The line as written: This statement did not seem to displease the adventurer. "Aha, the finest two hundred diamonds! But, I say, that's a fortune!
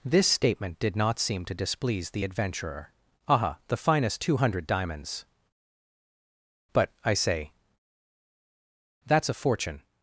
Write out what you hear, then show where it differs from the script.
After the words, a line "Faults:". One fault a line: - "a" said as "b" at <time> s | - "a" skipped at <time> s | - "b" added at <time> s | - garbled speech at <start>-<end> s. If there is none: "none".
This statement did not seem to displease the adventurer. "Aha, the finest two hundred diamonds! But, I say, that's a fortune!
Faults:
none